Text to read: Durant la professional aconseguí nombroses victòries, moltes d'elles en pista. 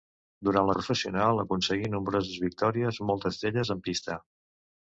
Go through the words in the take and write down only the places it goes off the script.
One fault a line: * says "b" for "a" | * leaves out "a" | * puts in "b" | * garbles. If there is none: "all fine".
all fine